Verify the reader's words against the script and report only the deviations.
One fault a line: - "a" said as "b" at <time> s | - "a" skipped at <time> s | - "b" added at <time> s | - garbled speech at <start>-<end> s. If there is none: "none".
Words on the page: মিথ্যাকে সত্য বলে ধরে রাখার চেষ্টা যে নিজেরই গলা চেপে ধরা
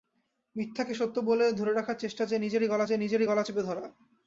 - "যে নিজেরই গলা" added at 2.8 s